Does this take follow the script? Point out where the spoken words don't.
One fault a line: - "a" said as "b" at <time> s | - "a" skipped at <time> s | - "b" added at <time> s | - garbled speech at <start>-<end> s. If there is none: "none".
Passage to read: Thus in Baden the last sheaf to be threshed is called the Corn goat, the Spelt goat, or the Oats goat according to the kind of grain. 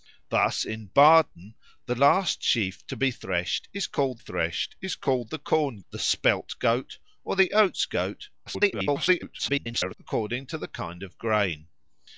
- "threshed is called" added at 4.2 s
- "goat" skipped at 5.8 s
- garbled speech at 8.5-9.9 s